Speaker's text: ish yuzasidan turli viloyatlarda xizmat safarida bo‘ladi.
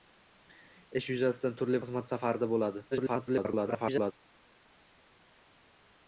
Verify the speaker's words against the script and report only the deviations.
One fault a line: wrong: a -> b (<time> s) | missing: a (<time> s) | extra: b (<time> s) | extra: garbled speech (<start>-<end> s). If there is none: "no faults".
missing: viloyatlarda (1.8 s)
extra: garbled speech (2.9-4.1 s)